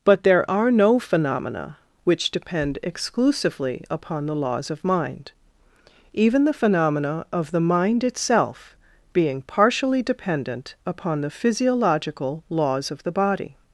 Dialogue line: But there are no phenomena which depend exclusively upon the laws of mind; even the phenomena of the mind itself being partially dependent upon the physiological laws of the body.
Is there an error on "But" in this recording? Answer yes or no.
no